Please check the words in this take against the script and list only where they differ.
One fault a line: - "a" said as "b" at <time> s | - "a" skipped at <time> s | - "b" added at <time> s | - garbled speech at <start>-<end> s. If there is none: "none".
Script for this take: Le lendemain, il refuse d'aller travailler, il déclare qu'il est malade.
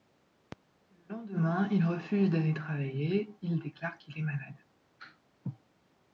none